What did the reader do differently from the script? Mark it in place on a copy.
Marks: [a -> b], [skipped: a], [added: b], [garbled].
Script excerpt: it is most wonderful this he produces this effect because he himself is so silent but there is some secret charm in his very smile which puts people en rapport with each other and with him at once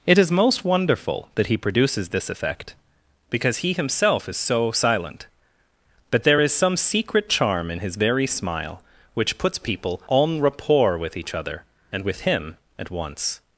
it is most wonderful [this -> that] he produces this effect because he himself is so silent but there is some secret charm in his very smile which puts people en rapport with each other and with him at once